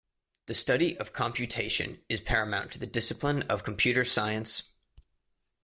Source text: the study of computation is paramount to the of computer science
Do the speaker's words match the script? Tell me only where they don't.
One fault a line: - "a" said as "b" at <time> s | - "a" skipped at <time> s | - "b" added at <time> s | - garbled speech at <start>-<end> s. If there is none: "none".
- "discipline" added at 2.9 s